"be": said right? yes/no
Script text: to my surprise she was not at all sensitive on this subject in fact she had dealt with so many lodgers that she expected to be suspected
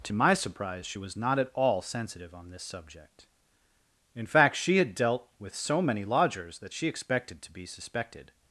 yes